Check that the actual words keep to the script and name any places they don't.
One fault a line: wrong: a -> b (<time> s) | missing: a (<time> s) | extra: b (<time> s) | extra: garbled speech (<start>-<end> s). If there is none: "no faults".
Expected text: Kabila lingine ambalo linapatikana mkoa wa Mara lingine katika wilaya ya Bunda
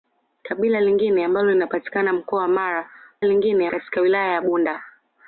no faults